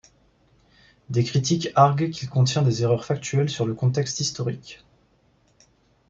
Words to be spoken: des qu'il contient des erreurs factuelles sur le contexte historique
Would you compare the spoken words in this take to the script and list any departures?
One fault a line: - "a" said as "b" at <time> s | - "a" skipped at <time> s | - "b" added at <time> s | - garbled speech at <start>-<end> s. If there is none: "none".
- "critiques arguent" added at 1.2 s